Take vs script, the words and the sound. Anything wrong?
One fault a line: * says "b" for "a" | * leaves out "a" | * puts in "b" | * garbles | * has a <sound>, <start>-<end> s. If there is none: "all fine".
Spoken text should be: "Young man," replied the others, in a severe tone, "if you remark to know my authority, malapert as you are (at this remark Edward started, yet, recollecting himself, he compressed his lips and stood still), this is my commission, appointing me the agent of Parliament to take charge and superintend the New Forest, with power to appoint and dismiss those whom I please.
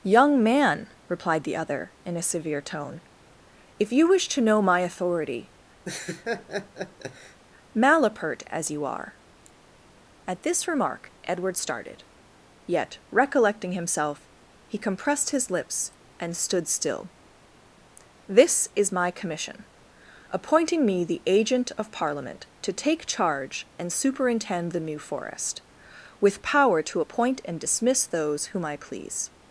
* says "other" for "others"
* says "wish" for "remark"
* has a laugh, 5.8-7.4 s